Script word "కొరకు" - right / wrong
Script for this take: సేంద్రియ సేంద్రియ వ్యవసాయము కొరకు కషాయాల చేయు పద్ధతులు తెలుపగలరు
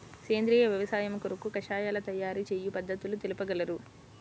right